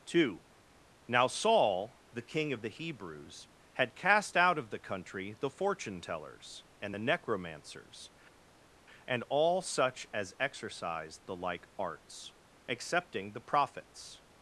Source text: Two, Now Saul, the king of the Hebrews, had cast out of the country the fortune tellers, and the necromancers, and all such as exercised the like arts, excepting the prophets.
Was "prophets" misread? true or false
false